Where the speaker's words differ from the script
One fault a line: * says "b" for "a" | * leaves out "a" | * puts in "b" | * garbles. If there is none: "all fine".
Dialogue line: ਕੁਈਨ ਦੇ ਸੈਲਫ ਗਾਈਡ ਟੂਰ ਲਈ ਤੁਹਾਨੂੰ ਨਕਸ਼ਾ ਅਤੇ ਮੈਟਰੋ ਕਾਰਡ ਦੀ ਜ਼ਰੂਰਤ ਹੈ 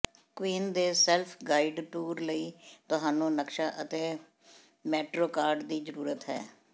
all fine